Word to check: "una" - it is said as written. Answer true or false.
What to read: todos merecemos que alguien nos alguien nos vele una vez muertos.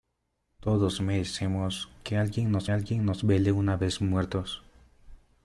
true